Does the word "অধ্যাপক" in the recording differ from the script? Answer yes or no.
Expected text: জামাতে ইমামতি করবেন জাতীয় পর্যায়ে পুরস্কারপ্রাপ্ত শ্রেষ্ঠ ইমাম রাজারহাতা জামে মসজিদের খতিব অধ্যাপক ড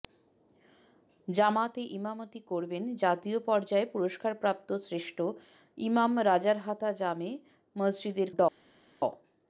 yes